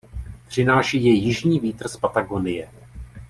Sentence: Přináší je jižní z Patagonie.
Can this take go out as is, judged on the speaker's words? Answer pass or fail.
fail